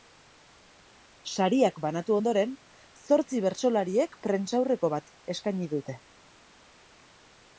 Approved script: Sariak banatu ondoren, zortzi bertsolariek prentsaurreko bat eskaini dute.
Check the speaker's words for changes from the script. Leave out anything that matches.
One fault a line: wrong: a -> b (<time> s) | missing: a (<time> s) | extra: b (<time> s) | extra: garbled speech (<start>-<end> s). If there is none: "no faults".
no faults